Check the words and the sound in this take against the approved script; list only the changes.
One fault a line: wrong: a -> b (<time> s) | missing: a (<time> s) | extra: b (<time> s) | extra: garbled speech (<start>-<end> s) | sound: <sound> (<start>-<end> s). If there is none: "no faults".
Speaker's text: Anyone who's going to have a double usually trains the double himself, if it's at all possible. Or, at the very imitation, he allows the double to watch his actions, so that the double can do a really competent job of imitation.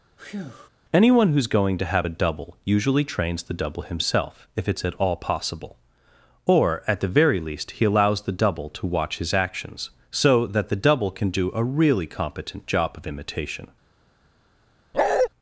sound: breath (0.2-0.7 s)
wrong: imitation -> least (7.4 s)
sound: bark (14.9-15.3 s)